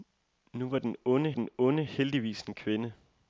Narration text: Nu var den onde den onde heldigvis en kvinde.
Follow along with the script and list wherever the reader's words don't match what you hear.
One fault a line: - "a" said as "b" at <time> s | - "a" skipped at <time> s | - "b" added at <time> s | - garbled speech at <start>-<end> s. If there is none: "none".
none